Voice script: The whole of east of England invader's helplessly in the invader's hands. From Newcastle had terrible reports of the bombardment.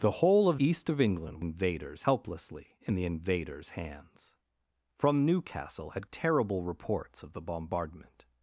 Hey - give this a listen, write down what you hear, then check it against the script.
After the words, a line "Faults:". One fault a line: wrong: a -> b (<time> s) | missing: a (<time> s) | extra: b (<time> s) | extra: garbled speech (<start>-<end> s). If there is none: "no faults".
The whole of east of England invader's helplessly in the invader's hands. From Newcastle had terrible reports of the bombardment.
Faults:
no faults